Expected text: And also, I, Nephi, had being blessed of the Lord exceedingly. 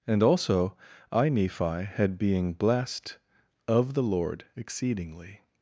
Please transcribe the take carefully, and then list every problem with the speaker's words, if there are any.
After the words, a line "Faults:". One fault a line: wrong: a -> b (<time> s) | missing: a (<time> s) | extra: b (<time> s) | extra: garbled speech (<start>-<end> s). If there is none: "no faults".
And also, I, Nephi, had being blessed of the Lord exceedingly.
Faults:
no faults